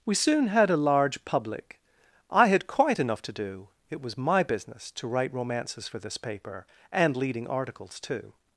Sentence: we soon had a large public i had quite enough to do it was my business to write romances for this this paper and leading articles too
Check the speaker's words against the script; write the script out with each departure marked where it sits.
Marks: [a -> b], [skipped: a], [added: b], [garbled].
we soon had a large public i had quite enough to do it was my business to write romances for this [skipped: this] paper and leading articles too